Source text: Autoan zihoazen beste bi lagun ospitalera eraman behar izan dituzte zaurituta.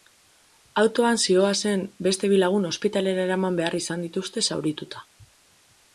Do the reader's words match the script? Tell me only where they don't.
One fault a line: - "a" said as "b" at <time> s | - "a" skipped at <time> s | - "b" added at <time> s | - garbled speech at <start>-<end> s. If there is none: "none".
none